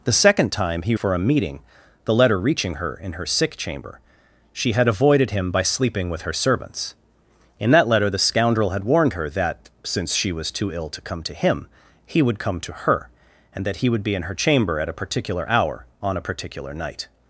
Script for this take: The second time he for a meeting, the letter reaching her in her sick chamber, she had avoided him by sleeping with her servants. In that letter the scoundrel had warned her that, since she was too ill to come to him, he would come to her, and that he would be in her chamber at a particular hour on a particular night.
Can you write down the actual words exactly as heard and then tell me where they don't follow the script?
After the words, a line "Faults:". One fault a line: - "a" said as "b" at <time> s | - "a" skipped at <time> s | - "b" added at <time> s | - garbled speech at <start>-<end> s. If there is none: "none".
The second time he for a meeting, the letter reaching her in her sick chamber, she had avoided him by sleeping with her servants. In that letter the scoundrel had warned her that, since she was too ill to come to him, he would come to her, and that he would be in her chamber at a particular hour on a particular night.
Faults:
none